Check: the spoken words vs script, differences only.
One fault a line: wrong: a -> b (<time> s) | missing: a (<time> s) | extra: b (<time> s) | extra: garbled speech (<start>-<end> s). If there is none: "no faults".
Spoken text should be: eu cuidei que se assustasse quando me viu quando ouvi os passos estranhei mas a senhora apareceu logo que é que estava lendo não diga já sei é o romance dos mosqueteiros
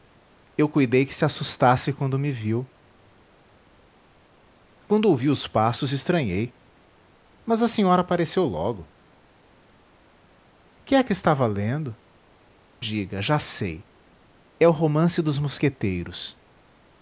missing: não (12.0 s)